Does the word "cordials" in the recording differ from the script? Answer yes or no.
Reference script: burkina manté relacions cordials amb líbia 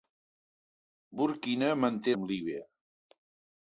yes